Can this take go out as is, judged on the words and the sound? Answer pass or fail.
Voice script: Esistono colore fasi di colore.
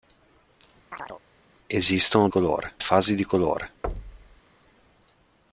fail